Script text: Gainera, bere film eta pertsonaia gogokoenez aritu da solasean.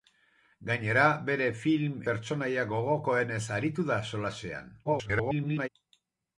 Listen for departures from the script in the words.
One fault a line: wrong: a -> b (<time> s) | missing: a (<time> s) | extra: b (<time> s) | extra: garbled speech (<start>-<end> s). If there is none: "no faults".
missing: eta (2.0 s)
extra: garbled speech (4.8-5.7 s)